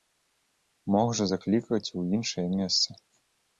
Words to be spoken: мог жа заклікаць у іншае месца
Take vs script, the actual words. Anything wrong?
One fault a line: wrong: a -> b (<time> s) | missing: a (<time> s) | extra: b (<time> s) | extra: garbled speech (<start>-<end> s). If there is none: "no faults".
no faults